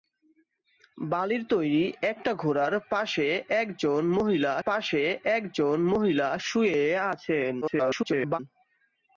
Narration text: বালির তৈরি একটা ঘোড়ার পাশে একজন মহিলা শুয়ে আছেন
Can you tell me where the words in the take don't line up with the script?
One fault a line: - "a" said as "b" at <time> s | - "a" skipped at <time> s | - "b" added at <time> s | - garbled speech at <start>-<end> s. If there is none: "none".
- "পাশে একজন মহিলা" added at 4.6 s
- garbled speech at 7.6-8.4 s